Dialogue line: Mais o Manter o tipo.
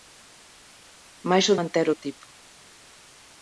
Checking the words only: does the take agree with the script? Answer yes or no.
yes